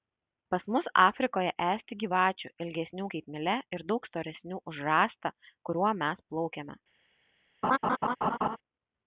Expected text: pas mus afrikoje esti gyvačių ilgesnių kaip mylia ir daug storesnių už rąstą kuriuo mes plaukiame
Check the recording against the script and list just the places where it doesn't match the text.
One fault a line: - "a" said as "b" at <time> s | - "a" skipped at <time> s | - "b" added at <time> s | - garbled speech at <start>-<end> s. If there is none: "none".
none